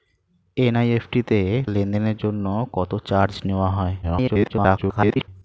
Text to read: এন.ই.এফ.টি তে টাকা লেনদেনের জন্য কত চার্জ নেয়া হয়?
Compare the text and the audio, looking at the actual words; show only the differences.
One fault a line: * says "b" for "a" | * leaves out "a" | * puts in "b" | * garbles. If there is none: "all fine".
* leaves out "টাকা"
* garbles